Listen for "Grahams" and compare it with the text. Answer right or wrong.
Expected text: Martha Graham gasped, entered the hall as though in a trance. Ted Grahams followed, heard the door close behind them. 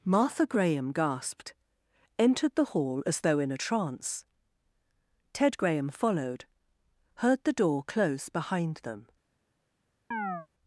wrong